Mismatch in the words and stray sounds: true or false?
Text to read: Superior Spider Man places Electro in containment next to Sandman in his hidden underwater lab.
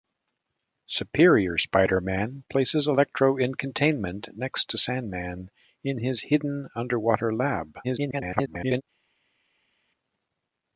true